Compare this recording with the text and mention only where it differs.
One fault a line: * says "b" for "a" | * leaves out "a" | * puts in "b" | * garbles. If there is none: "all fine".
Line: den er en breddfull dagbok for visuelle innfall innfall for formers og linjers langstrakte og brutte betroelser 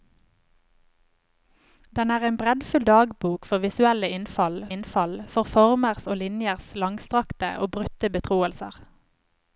all fine